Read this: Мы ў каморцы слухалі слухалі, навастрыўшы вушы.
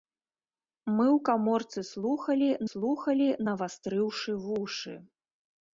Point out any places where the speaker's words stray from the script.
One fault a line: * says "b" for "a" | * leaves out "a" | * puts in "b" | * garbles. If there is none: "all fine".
all fine